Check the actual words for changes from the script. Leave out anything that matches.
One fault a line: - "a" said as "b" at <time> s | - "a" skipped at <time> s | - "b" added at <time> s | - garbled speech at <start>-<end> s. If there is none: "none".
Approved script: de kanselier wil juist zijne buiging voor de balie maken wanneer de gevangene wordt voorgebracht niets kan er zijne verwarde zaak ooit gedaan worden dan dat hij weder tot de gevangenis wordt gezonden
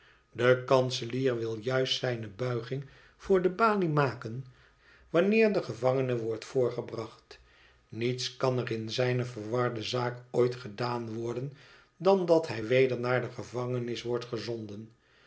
- "in" added at 8.7 s
- "tot" said as "naar" at 13.0 s